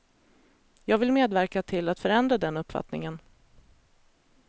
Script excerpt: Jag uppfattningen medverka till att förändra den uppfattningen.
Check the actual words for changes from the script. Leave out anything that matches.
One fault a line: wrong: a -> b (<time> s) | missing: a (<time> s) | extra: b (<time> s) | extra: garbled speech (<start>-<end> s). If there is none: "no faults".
wrong: uppfattningen -> vill (1.0 s)